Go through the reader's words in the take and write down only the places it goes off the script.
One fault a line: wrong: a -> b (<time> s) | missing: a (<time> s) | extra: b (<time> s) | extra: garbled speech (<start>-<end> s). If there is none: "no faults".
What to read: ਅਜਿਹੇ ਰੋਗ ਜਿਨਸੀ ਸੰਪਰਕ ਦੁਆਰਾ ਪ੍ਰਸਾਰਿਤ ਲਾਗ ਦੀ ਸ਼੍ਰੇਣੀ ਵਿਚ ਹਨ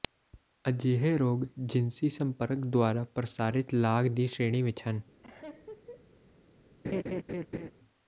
no faults